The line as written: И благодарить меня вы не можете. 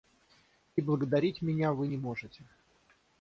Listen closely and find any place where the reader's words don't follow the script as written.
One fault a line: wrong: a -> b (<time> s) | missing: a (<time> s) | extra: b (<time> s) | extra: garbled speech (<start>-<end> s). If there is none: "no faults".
no faults